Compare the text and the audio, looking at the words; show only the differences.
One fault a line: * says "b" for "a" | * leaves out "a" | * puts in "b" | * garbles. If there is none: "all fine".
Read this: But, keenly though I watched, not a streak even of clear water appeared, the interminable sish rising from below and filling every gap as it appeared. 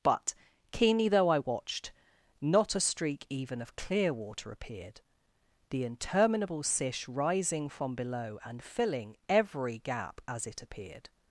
all fine